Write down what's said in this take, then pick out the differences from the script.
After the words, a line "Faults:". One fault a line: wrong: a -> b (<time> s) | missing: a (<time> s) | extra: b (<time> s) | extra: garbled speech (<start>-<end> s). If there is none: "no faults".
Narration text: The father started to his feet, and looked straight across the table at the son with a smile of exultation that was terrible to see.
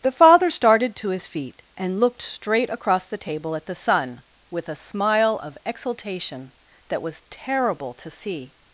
The father started to his feet, and looked straight across the table at the son with a smile of exultation that was terrible to see.
Faults:
no faults